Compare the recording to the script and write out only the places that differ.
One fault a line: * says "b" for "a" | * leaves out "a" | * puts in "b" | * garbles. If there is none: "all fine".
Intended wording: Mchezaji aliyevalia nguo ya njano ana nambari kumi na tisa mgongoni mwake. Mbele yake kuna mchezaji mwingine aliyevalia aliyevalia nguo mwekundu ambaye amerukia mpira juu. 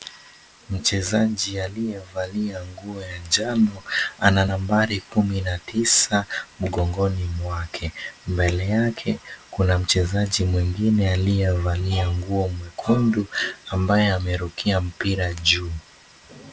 * leaves out "aliyevalia"